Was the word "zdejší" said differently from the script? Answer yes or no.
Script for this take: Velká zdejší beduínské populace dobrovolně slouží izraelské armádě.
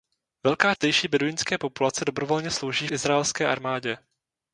no